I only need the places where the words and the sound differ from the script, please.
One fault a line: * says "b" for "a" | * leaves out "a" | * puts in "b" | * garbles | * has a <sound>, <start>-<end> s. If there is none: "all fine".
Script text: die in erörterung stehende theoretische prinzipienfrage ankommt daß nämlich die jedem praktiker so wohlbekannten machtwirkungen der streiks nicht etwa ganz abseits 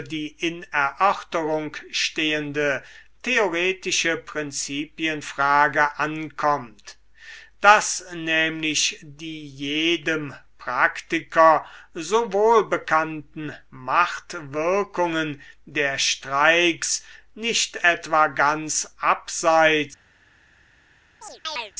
* has a chirp, 21.2-21.7 s